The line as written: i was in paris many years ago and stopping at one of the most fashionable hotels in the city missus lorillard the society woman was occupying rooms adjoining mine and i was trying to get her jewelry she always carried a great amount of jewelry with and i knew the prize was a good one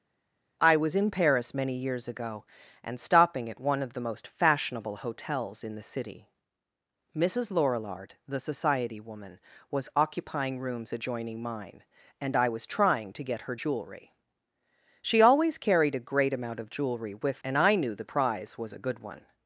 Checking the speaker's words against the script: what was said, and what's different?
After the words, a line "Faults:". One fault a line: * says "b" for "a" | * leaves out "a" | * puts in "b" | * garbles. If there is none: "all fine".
i was in paris many years ago and stopping at one of the most fashionable hotels in the city missus lorillard the society woman was occupying rooms adjoining mine and i was trying to get her jewelry she always carried a great amount of jewelry with and i knew the prize was a good one
Faults:
all fine